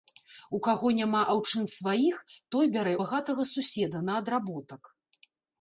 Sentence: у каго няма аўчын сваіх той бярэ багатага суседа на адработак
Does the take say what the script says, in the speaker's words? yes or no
yes